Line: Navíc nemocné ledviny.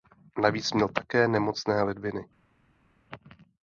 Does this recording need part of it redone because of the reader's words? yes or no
yes